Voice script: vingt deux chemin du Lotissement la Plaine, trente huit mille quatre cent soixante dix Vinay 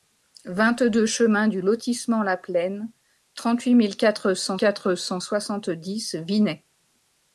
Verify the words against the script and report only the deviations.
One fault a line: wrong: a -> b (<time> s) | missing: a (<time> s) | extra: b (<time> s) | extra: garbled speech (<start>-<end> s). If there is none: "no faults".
extra: quatre cent (4.5 s)